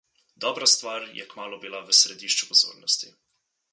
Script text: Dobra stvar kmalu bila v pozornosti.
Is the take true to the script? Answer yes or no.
no